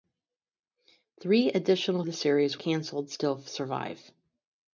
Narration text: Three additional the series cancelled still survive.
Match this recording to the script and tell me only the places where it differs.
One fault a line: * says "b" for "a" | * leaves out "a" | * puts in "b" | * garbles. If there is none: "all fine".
all fine